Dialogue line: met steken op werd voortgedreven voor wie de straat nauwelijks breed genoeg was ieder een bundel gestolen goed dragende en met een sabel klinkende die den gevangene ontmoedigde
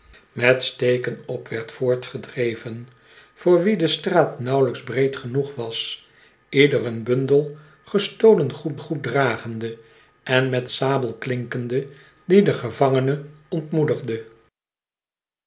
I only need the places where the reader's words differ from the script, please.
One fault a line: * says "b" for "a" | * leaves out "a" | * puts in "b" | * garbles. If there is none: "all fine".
* puts in "goed"
* leaves out "een"